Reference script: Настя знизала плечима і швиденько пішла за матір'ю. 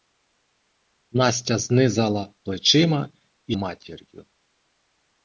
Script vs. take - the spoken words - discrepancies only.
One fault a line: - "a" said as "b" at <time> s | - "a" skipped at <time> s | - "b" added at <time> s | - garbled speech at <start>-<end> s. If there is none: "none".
- "швиденько пішла за" skipped at 3.5 s